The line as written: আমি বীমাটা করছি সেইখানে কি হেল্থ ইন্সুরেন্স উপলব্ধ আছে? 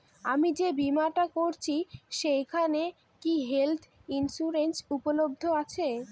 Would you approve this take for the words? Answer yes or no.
no